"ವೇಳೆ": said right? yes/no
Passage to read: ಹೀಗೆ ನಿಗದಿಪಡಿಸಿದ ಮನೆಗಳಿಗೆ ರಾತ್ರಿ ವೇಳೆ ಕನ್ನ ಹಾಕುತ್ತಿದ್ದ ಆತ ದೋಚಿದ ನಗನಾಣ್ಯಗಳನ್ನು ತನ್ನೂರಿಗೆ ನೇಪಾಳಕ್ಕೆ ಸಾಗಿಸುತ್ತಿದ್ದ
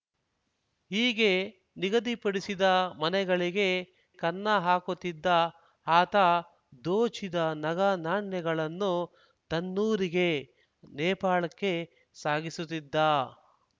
no